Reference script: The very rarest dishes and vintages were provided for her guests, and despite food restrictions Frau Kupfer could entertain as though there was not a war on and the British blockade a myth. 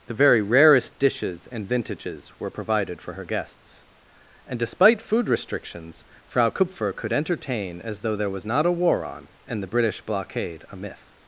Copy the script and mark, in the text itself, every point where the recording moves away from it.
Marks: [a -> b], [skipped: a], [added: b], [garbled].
The very rarest dishes and vintages were provided for her guests, and despite food restrictions Frau Kupfer could entertain as though there was not a war on and the British blockade a myth.